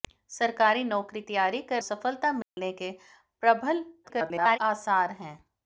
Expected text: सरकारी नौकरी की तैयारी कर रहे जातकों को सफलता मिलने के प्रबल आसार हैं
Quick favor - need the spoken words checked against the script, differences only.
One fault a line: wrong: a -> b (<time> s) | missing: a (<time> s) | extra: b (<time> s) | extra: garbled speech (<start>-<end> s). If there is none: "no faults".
missing: की (1.2 s)
missing: रहे जातकों को (1.8 s)
extra: garbled speech (4.0-4.6 s)